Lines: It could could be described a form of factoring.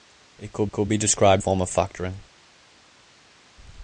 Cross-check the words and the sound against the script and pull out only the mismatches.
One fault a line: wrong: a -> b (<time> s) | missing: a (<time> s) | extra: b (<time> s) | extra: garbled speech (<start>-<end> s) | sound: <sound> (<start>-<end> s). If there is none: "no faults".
no faults